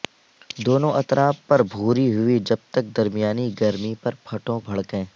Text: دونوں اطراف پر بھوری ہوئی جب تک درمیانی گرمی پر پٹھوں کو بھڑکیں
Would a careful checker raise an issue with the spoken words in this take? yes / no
yes